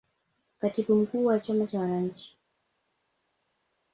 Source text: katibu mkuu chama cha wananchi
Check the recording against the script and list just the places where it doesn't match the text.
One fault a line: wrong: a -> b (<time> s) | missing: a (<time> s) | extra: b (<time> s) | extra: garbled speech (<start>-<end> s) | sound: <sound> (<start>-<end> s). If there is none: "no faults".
extra: wa (1.2 s)